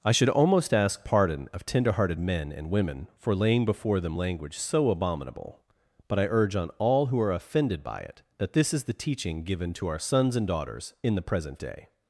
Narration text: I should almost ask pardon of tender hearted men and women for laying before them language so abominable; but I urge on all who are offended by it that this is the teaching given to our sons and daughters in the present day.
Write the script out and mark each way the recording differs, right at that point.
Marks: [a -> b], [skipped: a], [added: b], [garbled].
I should almost ask pardon of tender hearted men and women for laying before them language so abominable; but I urge on all who are offended by it that this is the teaching given to our sons and daughters in the present day.